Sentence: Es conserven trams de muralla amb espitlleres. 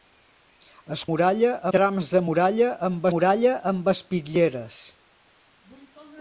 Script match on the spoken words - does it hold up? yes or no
no